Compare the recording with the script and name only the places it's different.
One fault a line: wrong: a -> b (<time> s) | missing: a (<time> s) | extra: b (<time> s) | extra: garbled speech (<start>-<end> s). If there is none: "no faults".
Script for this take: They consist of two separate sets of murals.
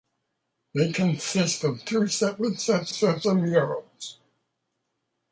extra: sets (2.9 s)